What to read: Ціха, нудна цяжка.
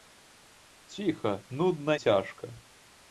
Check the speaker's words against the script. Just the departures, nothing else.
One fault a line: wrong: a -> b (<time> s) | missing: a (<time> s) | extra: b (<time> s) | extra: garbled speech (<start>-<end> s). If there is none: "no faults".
no faults